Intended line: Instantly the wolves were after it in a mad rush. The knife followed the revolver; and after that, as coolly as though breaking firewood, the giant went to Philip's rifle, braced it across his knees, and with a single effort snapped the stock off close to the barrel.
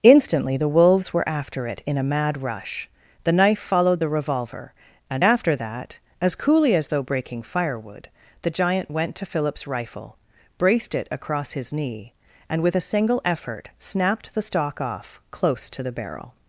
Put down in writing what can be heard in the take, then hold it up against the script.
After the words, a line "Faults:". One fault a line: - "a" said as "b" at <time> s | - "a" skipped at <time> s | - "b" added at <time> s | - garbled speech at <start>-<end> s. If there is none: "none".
Instantly the wolves were after it in a mad rush. The knife followed the revolver; and after that, as coolly as though breaking firewood, the giant went to Philip's rifle, braced it across his knee, and with a single effort snapped the stock off close to the barrel.
Faults:
- "knees" said as "knee" at 11.7 s